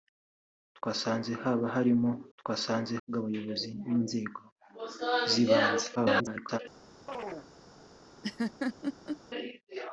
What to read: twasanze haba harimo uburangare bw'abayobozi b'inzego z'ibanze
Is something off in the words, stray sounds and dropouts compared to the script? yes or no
yes